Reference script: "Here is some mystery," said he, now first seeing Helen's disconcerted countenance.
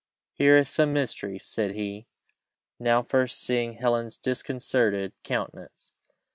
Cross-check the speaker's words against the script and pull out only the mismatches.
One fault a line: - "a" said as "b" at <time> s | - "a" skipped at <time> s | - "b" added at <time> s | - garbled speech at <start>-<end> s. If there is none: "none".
none